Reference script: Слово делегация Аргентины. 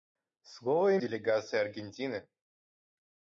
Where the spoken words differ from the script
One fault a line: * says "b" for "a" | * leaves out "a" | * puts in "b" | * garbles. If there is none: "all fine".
all fine